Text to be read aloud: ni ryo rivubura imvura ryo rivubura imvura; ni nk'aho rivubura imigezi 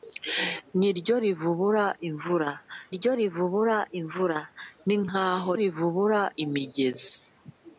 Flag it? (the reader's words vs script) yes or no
no